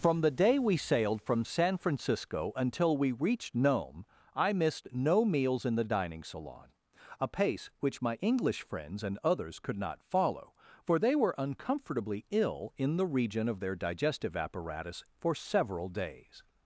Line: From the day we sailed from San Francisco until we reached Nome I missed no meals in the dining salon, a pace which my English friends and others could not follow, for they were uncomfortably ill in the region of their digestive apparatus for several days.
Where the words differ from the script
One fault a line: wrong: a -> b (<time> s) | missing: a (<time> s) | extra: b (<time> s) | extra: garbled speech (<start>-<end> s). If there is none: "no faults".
no faults